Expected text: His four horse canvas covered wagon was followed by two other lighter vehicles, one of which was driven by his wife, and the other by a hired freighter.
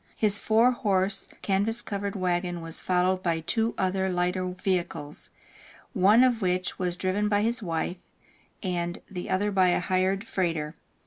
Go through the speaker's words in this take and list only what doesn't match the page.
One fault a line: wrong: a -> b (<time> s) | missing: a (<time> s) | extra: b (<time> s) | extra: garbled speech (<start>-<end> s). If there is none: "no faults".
no faults